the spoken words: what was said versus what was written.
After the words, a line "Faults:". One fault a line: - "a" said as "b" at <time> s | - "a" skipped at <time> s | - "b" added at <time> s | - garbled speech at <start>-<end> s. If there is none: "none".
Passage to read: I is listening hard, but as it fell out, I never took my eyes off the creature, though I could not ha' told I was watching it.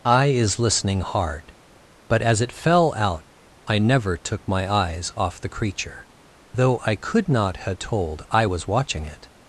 I is listening hard, but as it fell out, I never took my eyes off the creature, though I could not ha' told I was watching it.
Faults:
none